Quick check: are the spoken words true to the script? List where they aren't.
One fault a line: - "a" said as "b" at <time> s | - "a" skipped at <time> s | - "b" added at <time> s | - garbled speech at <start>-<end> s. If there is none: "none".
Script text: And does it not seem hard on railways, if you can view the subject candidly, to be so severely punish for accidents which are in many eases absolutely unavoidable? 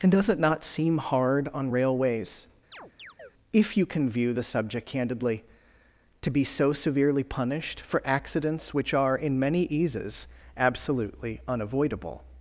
- "punish" said as "punished" at 7.2 s